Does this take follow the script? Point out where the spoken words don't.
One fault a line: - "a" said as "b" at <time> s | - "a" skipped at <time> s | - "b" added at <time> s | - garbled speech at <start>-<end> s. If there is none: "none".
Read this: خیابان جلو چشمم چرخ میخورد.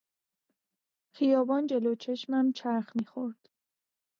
none